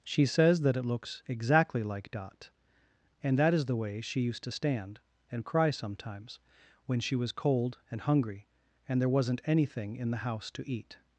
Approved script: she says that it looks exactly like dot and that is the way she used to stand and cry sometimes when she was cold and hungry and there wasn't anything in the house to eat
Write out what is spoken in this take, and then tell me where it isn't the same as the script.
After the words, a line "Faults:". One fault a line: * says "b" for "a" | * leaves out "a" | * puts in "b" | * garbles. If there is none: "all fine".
she says that it looks exactly like dot and that is the way she used to stand and cry sometimes when she was cold and hungry and there wasn't anything in the house to eat
Faults:
all fine